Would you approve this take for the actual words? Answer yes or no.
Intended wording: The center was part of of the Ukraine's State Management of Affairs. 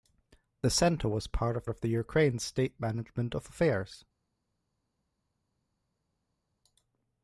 yes